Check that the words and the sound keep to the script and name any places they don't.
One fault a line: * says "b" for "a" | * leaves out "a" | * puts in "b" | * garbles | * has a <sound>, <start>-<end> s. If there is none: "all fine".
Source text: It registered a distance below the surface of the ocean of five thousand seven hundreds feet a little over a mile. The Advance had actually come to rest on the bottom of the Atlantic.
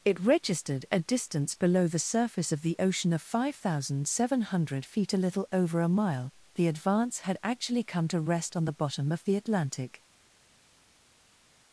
* says "hundred" for "hundreds"